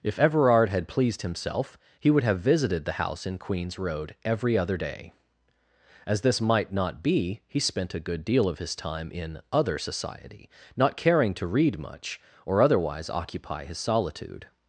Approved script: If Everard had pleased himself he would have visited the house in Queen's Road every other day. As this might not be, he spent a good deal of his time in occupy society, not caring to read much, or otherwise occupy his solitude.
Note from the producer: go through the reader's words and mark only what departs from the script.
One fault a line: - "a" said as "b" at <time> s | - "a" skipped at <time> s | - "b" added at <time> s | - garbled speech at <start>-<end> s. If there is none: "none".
- "occupy" said as "other" at 9.5 s